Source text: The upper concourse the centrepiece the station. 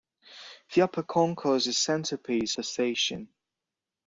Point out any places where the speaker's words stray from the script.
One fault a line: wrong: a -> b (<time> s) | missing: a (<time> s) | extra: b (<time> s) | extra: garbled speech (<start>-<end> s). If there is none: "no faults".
no faults